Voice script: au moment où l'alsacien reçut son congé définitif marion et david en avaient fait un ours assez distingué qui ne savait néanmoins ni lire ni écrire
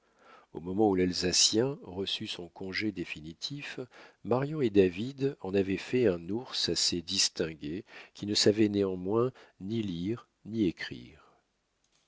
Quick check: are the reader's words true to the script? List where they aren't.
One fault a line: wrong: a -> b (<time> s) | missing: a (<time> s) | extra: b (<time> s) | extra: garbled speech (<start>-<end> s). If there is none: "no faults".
no faults